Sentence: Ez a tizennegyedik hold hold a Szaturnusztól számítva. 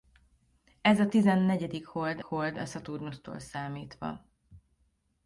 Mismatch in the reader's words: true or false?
false